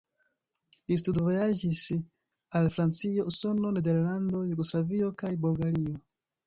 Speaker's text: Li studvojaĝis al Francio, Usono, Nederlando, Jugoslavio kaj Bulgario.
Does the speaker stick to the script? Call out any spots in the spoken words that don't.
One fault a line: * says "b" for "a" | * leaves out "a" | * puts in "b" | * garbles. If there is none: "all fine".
all fine